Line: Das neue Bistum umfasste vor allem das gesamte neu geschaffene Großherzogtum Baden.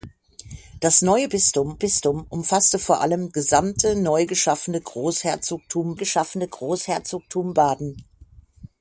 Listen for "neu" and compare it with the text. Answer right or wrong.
right